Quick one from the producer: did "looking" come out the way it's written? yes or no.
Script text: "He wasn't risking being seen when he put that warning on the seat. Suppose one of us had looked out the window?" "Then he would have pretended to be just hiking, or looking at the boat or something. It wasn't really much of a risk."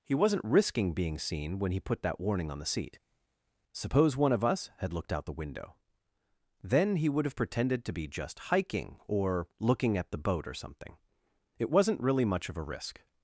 yes